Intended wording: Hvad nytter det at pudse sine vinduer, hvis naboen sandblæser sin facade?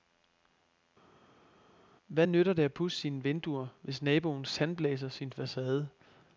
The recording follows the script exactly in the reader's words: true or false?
true